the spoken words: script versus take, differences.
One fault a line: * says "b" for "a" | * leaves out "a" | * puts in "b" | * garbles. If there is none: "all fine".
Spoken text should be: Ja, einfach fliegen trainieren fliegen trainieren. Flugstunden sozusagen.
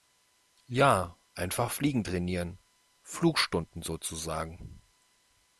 * leaves out "fliegen trainieren"